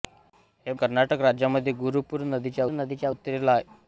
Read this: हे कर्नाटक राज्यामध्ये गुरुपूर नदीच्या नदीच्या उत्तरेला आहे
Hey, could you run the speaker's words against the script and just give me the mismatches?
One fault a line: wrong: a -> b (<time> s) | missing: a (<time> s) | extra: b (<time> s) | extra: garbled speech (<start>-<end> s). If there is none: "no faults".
no faults